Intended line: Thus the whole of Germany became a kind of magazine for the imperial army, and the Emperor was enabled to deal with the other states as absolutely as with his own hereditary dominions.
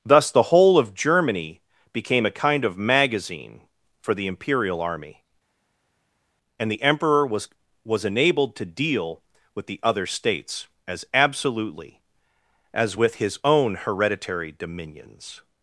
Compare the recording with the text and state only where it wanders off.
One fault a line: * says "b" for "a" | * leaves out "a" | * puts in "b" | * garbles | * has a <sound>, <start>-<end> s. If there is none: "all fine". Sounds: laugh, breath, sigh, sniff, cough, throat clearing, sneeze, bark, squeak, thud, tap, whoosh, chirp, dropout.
* puts in "was"